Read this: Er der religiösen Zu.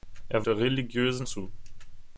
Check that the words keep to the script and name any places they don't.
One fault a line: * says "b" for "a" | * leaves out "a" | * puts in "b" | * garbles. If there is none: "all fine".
all fine